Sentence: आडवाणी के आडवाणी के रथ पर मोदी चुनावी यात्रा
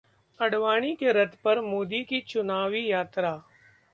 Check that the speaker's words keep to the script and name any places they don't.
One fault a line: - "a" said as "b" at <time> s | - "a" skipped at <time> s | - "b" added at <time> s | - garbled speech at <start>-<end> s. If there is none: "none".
- "आडवाणी के" skipped at 1.1 s
- "की" added at 2.0 s